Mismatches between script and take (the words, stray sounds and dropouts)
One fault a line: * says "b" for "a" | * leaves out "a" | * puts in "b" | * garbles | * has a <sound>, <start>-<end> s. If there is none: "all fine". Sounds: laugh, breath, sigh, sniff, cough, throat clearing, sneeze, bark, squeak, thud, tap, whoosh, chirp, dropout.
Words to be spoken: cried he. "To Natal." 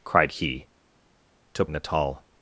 all fine